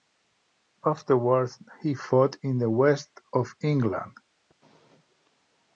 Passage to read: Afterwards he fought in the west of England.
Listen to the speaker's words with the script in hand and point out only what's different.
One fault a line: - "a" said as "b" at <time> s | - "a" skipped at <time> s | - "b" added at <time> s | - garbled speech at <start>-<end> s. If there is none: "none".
none